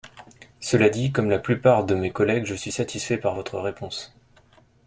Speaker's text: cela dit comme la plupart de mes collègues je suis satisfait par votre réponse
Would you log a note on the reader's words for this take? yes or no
no